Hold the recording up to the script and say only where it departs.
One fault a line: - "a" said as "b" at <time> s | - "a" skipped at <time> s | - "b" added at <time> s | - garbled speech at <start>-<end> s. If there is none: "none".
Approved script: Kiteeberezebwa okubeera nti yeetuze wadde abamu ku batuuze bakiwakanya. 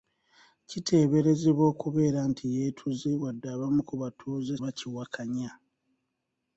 none